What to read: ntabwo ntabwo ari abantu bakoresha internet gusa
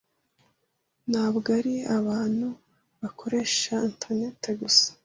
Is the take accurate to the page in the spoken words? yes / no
no